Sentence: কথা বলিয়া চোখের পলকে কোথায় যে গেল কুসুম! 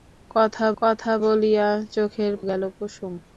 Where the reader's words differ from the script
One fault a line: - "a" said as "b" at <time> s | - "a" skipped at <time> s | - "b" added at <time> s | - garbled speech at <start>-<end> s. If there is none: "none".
- "কথা" added at 0.8 s
- "পলকে কোথায় যে" skipped at 2.3 s